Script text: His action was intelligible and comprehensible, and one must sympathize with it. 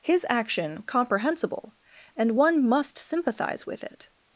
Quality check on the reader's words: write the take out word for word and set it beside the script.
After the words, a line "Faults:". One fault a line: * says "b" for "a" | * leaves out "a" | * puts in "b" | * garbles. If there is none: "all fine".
His action comprehensible, and one must sympathize with it.
Faults:
* leaves out "was intelligible and"